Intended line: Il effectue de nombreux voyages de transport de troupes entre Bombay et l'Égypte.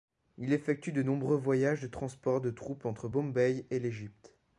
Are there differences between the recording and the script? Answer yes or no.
no